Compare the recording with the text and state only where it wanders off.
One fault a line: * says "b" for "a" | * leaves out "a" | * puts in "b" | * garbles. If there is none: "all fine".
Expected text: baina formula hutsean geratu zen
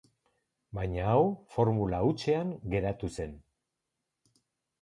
* puts in "hau"